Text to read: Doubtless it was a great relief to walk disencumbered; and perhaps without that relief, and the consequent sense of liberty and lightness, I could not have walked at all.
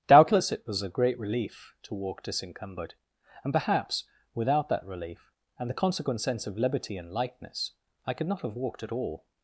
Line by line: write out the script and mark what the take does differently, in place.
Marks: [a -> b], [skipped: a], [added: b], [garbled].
Doubtless it was a great relief to walk disencumbered; and perhaps without that relief, and the consequent sense of liberty and lightness, I could not have walked at all.